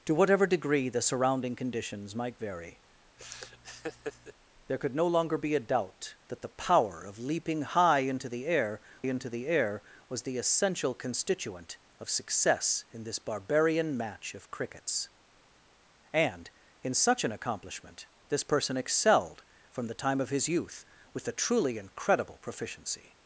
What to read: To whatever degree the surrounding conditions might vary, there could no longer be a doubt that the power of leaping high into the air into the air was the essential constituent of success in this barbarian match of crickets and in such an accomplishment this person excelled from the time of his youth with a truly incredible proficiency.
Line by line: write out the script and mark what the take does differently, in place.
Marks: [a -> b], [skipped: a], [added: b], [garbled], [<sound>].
To whatever degree the surrounding conditions might vary, [laugh] there could no longer be a doubt that the power of leaping high into the air into the air was the essential constituent of success in this barbarian match of crickets and in such an accomplishment this person excelled from the time of his youth with a truly incredible proficiency.